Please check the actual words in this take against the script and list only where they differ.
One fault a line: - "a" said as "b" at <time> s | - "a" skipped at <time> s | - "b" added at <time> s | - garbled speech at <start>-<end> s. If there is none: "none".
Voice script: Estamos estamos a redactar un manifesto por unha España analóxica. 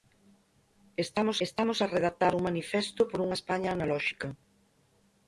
none